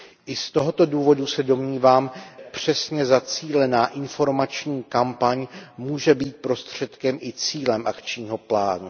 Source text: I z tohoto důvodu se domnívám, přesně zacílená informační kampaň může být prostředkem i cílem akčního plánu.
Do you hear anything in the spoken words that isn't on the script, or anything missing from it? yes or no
no